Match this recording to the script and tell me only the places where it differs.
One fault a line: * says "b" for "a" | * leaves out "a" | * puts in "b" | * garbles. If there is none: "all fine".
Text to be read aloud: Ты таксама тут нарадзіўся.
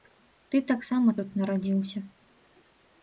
all fine